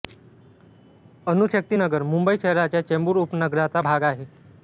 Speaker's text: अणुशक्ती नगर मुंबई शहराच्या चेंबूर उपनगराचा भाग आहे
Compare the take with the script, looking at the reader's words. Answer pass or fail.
pass